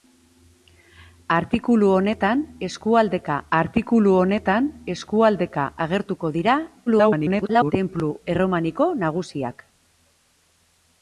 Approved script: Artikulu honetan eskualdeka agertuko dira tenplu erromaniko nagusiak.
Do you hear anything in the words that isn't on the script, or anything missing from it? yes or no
yes